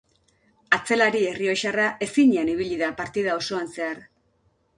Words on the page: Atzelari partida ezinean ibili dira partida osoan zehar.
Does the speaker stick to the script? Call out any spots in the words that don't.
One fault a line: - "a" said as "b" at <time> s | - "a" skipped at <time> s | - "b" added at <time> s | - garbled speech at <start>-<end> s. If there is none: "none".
- "partida" said as "errioxarra" at 1.3 s
- "dira" said as "da" at 2.8 s